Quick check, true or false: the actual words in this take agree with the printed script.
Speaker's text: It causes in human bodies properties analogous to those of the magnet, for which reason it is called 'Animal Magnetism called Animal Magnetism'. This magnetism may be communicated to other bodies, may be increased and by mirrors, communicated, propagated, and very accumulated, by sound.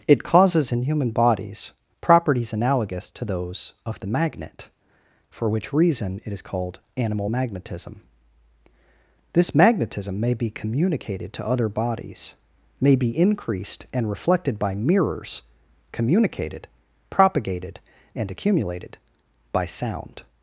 false